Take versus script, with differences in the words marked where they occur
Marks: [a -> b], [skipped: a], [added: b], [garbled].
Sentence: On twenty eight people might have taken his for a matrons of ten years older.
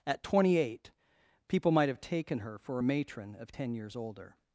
[On -> At] twenty eight people might have taken [his -> her] for a [matrons -> matron] of ten years older.